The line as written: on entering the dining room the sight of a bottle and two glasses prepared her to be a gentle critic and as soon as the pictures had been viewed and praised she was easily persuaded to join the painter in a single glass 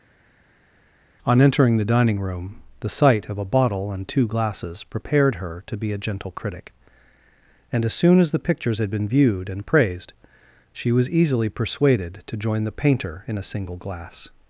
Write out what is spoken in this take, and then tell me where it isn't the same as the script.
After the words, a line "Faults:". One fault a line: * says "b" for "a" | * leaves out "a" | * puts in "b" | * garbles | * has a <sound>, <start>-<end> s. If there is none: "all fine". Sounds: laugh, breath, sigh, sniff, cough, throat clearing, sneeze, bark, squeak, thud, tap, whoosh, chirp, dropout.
on entering the dining room the sight of a bottle and two glasses prepared her to be a gentle critic and as soon as the pictures had been viewed and praised she was easily persuaded to join the painter in a single glass
Faults:
all fine